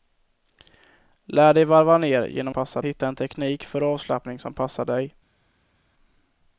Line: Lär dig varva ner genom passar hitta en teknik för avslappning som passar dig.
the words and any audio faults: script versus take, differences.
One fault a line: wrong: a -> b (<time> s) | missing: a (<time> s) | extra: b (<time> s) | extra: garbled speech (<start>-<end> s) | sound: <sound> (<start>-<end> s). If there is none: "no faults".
no faults